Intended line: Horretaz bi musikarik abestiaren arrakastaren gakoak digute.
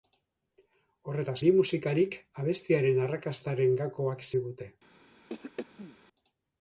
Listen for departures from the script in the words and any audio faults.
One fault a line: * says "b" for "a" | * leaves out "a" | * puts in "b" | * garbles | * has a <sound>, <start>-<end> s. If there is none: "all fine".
* has a throat clearing, 5.3-6.0 s